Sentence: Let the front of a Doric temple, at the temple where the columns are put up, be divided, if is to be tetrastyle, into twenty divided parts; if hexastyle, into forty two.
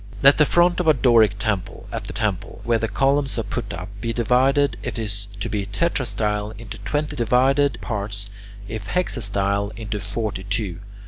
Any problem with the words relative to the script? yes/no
no